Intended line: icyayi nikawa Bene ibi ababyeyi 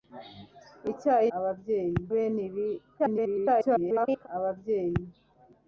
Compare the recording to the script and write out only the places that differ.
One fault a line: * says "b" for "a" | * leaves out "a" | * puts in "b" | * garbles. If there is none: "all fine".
* says "ababyeyi" for "nikawa"
* garbles